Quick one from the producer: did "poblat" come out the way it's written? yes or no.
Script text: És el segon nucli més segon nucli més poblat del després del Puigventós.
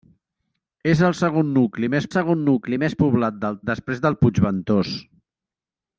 yes